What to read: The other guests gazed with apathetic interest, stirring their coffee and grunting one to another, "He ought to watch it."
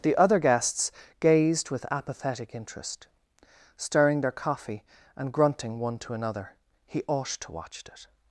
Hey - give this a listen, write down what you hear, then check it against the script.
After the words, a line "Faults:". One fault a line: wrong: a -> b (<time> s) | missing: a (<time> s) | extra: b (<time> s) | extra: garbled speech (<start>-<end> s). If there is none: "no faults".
The other guests gazed with apathetic interest, stirring their coffee and grunting one to another, "He ought to watch it."
Faults:
no faults